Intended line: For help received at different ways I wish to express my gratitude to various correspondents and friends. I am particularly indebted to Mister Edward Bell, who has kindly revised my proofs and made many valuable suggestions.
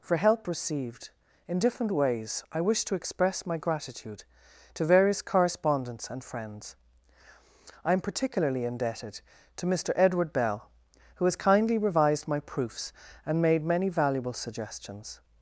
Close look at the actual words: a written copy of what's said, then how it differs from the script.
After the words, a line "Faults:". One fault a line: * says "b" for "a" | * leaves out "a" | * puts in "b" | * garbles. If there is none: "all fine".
For help received in different ways I wish to express my gratitude to various correspondents and friends. I am particularly indebted to Mister Edward Bell, who has kindly revised my proofs and made many valuable suggestions.
Faults:
* says "in" for "at"